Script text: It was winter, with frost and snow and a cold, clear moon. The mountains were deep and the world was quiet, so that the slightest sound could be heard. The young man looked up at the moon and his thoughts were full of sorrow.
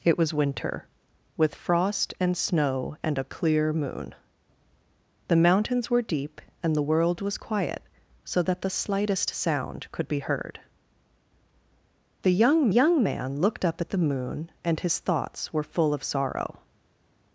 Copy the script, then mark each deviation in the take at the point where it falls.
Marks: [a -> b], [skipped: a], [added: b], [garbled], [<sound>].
It was winter, with frost and snow and a [skipped: cold,] clear moon. The mountains were deep and the world was quiet, so that the slightest sound could be heard. The young [added: young] man looked up at the moon and his thoughts were full of sorrow.